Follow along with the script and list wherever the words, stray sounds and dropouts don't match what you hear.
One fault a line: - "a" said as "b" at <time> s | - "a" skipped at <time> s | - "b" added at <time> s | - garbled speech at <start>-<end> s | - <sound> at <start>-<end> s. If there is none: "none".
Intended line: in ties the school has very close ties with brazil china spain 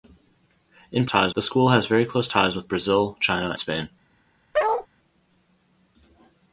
- bark at 4.5-4.9 s